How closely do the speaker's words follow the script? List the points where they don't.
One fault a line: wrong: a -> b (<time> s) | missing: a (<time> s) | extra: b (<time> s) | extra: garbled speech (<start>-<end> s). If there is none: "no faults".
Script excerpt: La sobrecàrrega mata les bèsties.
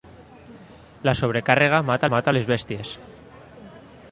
extra: mata (2.1 s)